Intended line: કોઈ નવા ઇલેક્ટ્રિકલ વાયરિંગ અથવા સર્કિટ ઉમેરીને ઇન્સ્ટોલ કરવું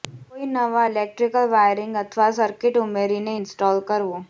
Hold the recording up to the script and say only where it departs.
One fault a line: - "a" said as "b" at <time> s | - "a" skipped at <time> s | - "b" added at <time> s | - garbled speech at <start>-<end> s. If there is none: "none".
none